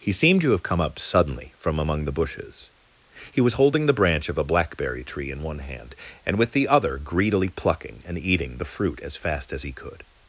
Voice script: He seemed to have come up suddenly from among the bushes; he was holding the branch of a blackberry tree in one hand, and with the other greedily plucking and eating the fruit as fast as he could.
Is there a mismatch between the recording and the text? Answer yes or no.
no